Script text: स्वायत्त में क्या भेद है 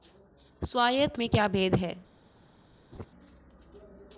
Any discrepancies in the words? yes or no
no